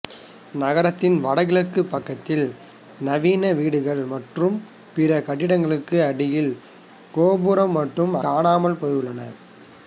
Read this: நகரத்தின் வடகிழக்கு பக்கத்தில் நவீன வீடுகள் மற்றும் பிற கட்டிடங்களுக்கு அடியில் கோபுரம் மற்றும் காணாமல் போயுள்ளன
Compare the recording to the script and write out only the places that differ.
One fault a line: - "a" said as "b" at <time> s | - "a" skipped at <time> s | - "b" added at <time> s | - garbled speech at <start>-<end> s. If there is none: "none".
none